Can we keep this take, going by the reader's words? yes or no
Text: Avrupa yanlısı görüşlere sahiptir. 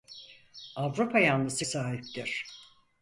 no